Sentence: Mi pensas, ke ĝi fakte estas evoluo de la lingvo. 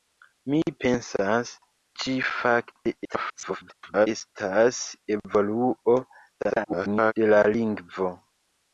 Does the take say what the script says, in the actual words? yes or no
no